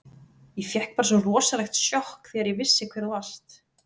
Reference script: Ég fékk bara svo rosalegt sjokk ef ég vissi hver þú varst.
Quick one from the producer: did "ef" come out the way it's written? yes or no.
no